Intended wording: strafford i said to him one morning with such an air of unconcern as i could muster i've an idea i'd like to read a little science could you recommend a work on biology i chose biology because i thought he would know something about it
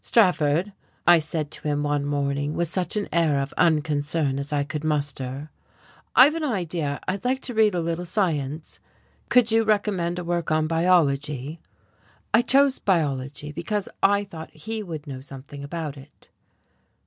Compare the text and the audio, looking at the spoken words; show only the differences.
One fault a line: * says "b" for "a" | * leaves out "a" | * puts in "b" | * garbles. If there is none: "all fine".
all fine